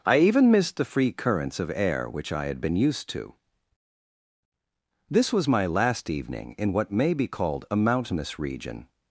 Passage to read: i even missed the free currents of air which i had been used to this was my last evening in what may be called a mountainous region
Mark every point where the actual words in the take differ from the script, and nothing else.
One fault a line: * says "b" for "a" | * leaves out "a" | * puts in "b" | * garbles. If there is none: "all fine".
all fine